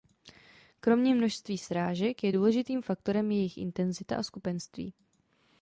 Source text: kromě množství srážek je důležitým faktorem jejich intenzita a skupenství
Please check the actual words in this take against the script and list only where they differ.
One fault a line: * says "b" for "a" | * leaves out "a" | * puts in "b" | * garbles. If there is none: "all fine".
all fine